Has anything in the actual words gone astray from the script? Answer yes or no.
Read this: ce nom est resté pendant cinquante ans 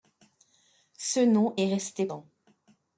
yes